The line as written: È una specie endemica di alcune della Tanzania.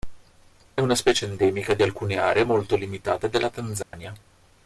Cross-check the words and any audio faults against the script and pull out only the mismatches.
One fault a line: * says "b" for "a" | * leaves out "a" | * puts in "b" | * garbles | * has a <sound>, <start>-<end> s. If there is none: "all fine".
* puts in "aree molto limitate"
* has a dropout, 3.8-3.9 s